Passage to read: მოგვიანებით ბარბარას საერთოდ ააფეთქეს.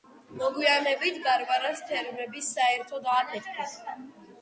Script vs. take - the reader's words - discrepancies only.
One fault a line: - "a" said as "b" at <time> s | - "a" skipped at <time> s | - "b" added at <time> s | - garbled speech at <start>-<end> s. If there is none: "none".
- "თერმები" added at 1.9 s